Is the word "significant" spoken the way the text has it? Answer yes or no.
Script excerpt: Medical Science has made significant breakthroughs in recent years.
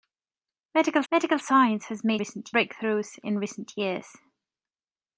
no